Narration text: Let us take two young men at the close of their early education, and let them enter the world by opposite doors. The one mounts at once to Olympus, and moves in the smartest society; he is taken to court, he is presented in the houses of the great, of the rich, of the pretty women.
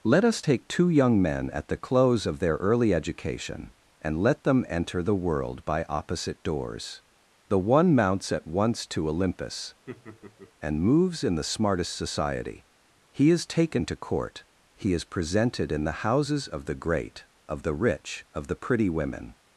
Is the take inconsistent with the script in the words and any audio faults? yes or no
yes